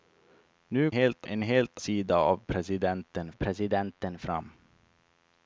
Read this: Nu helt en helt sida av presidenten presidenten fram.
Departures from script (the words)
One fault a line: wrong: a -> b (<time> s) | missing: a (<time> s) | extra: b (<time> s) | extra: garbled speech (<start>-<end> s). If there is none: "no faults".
no faults